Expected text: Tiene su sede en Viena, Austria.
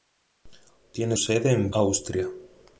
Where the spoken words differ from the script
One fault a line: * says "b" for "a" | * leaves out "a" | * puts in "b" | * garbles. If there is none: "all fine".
* leaves out "su"
* leaves out "Viena"